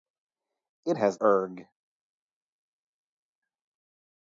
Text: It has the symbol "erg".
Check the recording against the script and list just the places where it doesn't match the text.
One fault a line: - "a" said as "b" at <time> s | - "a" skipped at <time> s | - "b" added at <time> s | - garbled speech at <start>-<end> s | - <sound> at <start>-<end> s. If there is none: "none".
- "the symbol" skipped at 1.2 s